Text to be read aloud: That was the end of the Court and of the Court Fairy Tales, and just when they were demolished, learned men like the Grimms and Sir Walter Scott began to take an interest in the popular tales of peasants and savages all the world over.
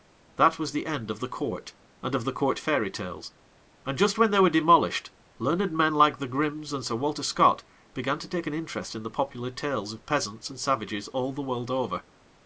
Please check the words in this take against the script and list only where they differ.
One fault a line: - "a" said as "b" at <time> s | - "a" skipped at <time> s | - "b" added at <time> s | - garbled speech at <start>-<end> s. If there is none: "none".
none